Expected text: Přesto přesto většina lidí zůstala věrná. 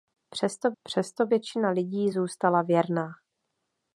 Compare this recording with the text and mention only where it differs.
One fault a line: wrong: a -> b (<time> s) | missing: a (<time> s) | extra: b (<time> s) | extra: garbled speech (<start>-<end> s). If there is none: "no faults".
no faults